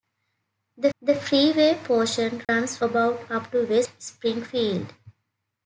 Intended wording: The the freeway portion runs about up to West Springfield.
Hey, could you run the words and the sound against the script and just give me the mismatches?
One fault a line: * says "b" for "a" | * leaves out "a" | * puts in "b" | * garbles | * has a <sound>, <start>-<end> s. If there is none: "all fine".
* has a dropout, 2.4-2.5 s